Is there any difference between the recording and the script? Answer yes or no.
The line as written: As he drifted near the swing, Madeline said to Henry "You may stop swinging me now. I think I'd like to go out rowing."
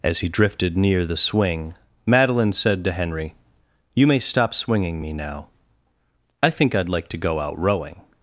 no